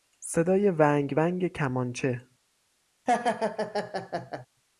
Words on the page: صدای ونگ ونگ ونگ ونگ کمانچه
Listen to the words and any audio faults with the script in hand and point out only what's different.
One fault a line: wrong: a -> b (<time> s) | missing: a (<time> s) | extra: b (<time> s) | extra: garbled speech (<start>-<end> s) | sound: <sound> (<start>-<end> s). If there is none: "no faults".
missing: ونگ ونگ (1.5 s)
sound: laugh (3.1-4.5 s)